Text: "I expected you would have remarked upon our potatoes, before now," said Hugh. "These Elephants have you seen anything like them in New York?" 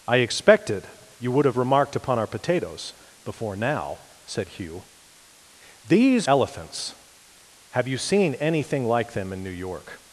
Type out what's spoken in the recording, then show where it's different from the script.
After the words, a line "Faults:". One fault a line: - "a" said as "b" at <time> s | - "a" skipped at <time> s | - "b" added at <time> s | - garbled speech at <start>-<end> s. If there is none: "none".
"I expected you would have remarked upon our potatoes, before now," said Hugh. "These Elephants have you seen anything like them in New York?"
Faults:
none